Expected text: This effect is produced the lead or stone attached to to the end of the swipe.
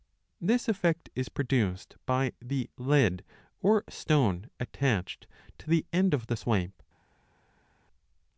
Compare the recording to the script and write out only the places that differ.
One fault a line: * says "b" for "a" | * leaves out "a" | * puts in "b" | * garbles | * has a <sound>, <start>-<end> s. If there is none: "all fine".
* puts in "by"
* leaves out "to"